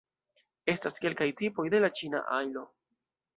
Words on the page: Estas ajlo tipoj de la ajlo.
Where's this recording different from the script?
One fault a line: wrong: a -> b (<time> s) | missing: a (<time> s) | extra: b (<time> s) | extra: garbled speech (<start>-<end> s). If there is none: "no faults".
wrong: ajlo -> kelkaj (1.0 s)
extra: ĉina (2.0 s)